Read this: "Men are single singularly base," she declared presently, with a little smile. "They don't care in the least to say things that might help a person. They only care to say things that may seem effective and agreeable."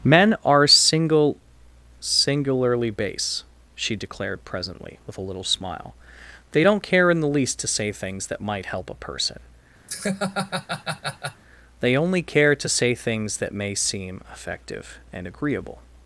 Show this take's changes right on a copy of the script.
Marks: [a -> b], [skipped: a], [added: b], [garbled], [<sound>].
"Men are single singularly base," she declared presently, with a little smile. "They don't care in the least to say things that might help a person. [laugh] They only care to say things that may seem effective and agreeable."